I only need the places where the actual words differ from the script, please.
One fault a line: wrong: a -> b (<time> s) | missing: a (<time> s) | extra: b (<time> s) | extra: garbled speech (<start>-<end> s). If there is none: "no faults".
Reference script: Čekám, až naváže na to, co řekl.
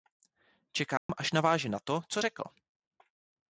no faults